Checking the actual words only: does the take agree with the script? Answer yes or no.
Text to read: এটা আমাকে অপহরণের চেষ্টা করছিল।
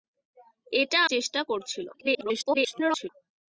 no